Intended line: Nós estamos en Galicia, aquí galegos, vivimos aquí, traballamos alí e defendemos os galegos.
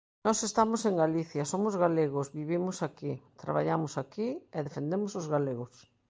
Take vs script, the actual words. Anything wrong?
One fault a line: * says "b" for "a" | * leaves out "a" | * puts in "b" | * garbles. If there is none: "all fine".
* says "somos" for "aquí"
* says "aquí" for "alí"